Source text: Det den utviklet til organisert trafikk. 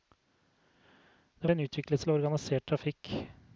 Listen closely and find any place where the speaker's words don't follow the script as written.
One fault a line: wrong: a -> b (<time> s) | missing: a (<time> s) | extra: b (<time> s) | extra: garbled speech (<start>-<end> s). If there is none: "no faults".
no faults